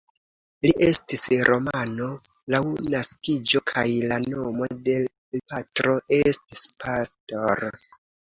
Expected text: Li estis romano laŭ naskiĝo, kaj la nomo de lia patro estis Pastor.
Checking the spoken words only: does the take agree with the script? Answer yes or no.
no